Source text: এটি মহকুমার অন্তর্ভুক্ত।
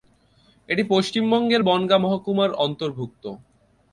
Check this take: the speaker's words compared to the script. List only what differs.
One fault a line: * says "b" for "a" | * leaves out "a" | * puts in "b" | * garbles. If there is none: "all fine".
* puts in "পশ্চিমবঙ্গের বনগাঁ"